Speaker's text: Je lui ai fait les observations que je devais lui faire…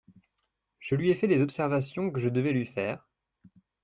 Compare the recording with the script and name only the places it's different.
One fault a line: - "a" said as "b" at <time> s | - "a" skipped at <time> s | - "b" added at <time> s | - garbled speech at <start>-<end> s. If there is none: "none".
none